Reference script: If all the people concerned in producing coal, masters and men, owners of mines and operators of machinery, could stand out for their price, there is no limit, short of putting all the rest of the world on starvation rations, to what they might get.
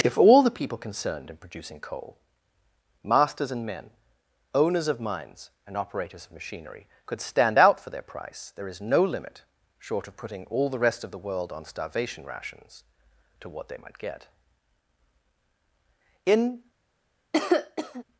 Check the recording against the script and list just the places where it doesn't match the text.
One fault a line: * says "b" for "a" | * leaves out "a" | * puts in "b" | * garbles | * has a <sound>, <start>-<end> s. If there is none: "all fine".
* puts in "In"
* has a cough, 17.3-18.0 s